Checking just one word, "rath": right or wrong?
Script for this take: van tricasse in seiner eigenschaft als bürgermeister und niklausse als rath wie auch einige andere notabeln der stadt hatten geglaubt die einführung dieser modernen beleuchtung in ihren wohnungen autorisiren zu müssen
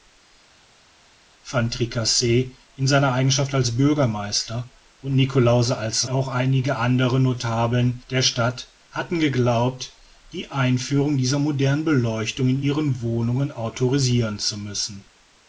wrong